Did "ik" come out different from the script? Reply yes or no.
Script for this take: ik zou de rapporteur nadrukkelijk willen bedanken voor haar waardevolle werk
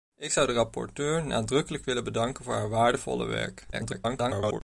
no